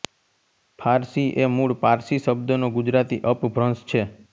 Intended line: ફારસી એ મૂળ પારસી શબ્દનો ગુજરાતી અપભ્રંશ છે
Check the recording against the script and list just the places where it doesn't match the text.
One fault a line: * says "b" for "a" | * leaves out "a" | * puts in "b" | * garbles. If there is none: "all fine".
all fine